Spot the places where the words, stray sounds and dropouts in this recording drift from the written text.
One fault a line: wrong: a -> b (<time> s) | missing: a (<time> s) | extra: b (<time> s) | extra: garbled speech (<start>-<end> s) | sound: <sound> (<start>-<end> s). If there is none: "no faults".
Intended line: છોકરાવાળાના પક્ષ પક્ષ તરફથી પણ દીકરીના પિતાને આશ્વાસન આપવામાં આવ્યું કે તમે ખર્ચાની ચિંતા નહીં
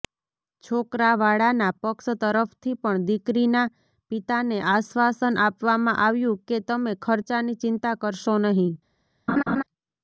missing: પક્ષ (2.1 s)
extra: કરશો (8.0 s)
sound: laugh (9.3-9.6 s)